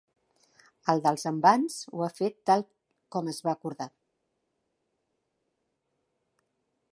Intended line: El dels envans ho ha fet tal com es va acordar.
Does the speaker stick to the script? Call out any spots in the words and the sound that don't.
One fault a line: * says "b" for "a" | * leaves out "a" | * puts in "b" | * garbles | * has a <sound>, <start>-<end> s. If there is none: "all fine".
all fine